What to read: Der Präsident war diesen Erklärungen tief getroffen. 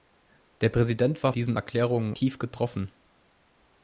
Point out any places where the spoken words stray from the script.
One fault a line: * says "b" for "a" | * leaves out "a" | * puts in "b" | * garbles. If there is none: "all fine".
all fine